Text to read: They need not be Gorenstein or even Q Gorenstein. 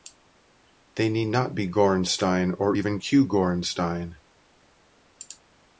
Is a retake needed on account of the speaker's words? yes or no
no